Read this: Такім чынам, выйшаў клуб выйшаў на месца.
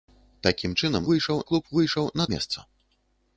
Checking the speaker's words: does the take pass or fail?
pass